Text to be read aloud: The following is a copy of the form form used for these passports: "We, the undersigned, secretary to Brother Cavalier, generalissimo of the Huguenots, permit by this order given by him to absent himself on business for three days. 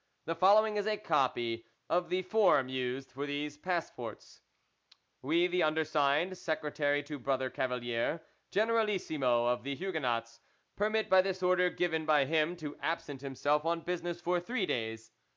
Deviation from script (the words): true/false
true